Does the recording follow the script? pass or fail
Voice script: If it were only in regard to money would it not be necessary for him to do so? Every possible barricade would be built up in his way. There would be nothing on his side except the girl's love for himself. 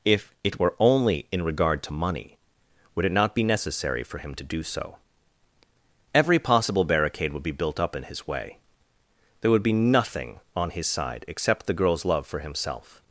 pass